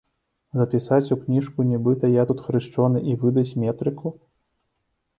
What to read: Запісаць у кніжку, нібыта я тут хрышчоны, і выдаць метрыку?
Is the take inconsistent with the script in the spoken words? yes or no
no